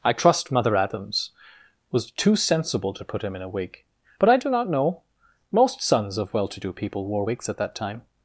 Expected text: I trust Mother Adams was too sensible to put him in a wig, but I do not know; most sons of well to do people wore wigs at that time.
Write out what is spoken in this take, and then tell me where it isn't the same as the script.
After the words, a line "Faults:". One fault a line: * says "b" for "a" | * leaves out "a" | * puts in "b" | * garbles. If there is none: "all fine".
I trust Mother Adams was too sensible to put him in a wig, but I do not know; most sons of well to do people wore wigs at that time.
Faults:
all fine